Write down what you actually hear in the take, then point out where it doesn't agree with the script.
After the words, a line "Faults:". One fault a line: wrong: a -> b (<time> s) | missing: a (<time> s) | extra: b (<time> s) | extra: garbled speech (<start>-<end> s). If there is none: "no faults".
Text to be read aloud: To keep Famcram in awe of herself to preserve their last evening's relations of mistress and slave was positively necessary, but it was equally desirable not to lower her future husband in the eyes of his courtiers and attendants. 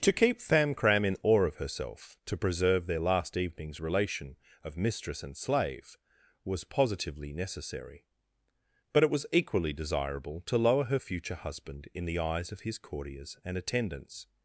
To keep Famcram in awe of herself to preserve their last evening's relation of mistress and slave was positively necessary, but it was equally desirable to lower her future husband in the eyes of his courtiers and attendants.
Faults:
wrong: relations -> relation (3.8 s)
missing: not (10.4 s)